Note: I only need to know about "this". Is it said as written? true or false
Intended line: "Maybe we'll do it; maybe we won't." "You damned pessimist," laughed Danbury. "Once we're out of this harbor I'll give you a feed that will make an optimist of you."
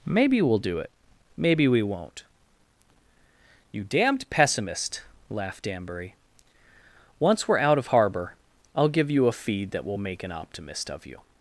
false